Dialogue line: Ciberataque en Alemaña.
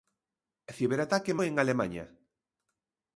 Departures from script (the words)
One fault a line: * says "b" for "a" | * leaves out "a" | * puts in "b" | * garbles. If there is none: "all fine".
all fine